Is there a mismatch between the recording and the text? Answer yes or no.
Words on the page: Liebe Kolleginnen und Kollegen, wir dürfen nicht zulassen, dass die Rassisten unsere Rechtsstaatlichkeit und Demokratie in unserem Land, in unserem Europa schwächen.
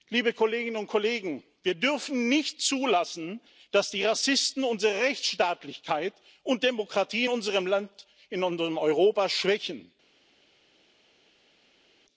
no